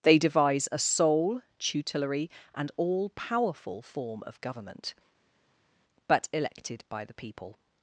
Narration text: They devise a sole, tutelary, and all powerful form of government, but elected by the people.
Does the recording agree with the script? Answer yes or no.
yes